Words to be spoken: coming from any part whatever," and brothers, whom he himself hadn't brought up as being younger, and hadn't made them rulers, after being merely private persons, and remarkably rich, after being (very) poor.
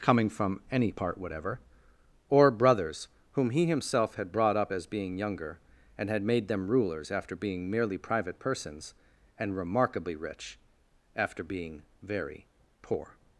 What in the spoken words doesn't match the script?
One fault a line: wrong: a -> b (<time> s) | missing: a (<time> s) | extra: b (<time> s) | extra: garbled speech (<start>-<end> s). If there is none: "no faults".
wrong: and -> or (2.3 s)
wrong: hadn't -> had (4.2 s)
wrong: hadn't -> had (6.1 s)